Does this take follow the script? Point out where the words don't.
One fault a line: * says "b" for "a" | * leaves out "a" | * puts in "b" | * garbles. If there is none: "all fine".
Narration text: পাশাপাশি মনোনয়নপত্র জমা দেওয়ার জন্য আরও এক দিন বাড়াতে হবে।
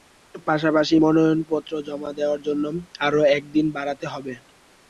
all fine